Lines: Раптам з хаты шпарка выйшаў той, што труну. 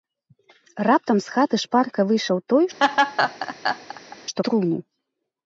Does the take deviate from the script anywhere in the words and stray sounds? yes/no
yes